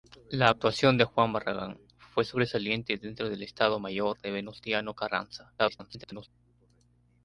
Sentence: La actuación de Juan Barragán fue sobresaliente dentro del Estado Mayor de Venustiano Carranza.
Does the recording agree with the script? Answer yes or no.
no